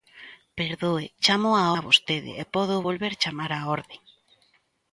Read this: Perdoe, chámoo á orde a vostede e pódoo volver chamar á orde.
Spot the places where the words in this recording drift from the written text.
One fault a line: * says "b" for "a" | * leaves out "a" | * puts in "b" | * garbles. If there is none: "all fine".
* leaves out "orde"